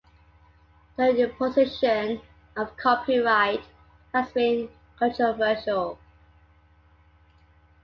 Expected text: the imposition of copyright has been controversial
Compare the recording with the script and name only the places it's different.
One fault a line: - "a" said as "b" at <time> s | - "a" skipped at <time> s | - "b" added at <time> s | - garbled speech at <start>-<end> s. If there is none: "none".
none